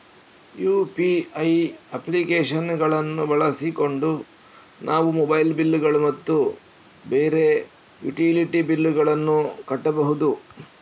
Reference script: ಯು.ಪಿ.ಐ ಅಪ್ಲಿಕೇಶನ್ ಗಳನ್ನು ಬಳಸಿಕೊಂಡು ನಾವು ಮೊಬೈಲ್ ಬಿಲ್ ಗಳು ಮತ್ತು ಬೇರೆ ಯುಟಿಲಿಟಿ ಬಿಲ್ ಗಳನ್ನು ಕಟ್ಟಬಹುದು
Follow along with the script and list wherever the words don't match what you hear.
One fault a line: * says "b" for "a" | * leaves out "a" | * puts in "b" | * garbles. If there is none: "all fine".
all fine